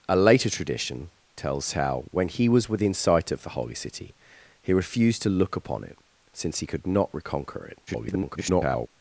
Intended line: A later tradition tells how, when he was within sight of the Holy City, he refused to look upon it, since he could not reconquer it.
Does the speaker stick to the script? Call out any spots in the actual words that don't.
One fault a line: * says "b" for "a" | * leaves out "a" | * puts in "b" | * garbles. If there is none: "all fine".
* garbles